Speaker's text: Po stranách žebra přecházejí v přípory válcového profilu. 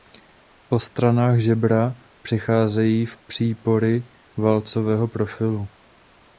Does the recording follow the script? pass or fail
pass